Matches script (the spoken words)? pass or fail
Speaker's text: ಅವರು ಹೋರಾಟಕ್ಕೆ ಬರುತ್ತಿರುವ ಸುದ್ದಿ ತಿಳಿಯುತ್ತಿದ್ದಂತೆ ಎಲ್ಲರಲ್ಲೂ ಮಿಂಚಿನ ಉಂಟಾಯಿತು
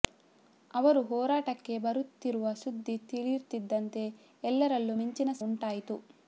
pass